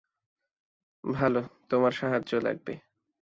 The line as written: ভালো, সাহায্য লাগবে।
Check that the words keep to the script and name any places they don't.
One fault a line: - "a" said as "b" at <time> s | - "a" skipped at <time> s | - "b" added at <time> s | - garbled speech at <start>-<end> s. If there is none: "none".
- "তোমার" added at 1.7 s